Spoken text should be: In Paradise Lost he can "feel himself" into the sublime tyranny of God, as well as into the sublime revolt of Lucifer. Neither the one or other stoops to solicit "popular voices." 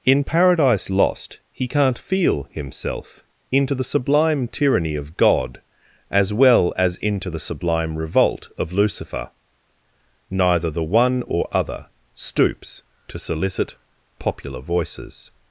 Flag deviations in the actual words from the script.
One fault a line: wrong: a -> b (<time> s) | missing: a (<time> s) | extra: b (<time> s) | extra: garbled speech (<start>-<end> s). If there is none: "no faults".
wrong: can -> can't (1.7 s)